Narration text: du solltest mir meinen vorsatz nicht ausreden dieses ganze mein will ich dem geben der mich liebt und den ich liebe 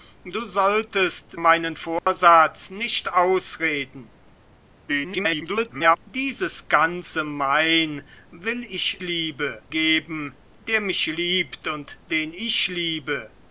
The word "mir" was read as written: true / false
false